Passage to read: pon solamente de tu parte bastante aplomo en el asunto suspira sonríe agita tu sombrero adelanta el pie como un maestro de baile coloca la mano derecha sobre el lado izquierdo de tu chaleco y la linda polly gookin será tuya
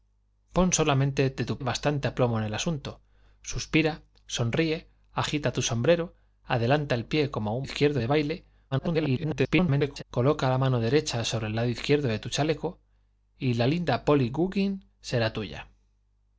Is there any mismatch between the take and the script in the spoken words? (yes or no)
yes